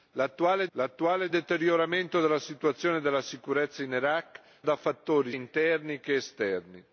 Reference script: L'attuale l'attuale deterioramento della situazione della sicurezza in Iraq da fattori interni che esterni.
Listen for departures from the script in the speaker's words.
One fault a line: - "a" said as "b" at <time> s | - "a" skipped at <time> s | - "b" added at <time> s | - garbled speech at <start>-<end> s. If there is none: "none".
none